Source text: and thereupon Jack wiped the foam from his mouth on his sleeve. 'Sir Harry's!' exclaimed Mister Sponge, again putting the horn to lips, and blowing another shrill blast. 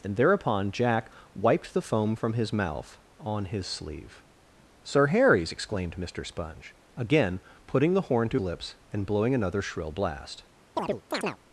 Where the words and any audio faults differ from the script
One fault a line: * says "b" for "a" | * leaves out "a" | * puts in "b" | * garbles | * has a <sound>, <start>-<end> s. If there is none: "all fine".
* has a chirp, 10.8-11.4 s